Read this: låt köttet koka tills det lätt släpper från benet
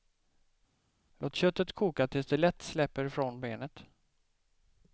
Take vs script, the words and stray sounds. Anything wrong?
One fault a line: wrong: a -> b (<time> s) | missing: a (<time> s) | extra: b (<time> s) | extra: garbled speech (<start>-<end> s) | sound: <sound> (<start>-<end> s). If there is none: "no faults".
no faults